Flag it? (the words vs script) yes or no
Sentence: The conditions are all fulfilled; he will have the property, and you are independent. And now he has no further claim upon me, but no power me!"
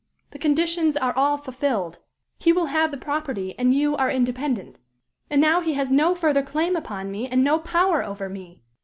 yes